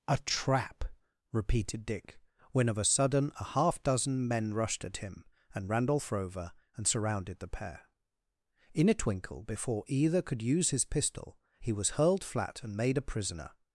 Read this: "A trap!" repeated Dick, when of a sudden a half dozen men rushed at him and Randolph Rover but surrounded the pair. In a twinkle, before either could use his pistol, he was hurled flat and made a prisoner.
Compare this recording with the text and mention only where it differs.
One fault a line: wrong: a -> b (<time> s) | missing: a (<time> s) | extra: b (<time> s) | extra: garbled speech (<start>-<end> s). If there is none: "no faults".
wrong: but -> and (6.7 s)